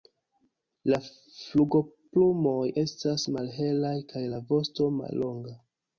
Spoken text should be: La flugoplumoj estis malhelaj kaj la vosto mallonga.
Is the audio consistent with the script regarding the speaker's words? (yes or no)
no